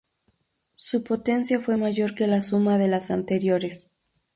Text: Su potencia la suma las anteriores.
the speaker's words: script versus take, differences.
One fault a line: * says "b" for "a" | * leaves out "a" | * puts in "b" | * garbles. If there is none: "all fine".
* puts in "fue mayor que"
* puts in "de"